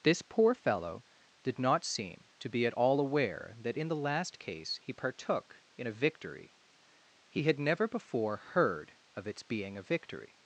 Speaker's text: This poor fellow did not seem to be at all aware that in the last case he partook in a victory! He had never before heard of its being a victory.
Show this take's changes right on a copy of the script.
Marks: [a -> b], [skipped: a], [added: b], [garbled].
This poor fellow did not seem to be at all aware that in the last case he partook in a victory! He had never before heard of its being a victory.